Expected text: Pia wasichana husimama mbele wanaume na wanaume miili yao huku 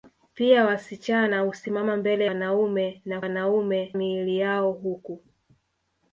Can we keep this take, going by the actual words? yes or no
yes